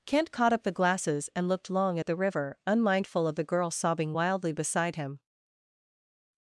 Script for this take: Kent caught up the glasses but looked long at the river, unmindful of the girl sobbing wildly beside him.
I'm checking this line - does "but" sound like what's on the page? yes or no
no